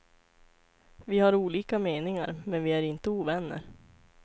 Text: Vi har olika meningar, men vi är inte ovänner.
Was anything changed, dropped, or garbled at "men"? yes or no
no